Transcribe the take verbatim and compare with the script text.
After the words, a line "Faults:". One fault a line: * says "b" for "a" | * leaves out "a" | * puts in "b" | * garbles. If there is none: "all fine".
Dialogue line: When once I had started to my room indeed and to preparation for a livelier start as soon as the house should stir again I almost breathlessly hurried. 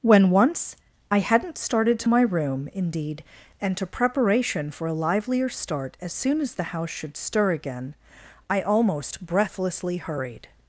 When once I hadn't started to my room indeed and to preparation for a livelier start as soon as the house should stir again I almost breathlessly hurried.
Faults:
* says "hadn't" for "had"